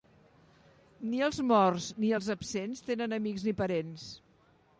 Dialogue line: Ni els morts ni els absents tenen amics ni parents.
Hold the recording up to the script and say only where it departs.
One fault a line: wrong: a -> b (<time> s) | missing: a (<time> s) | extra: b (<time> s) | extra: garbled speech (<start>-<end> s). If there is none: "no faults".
no faults